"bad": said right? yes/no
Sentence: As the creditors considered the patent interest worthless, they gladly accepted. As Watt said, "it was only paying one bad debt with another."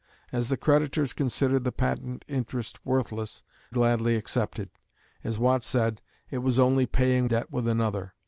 no